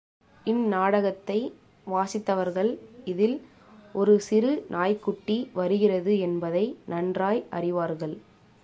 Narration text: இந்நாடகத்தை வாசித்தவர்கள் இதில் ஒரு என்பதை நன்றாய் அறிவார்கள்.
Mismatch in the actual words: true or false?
true